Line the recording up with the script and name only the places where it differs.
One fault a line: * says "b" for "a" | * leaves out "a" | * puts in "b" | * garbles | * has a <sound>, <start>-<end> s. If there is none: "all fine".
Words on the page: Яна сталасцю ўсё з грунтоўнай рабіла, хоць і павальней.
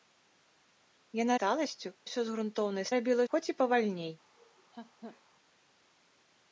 * has a laugh, 4.4-5.2 s